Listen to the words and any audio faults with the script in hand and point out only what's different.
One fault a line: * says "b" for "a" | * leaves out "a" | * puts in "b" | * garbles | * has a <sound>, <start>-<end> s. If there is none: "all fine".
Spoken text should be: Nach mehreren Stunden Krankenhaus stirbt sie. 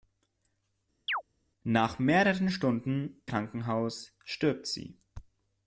* has a chirp, 1.1-1.2 s